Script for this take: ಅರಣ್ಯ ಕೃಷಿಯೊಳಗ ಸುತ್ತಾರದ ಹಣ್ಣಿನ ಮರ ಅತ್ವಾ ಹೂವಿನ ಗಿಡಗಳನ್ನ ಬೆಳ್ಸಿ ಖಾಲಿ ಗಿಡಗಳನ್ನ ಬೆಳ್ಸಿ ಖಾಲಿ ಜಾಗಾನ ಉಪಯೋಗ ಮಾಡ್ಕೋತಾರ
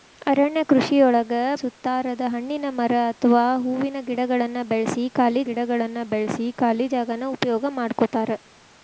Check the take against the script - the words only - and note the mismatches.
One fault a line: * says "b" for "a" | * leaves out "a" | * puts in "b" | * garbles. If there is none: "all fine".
all fine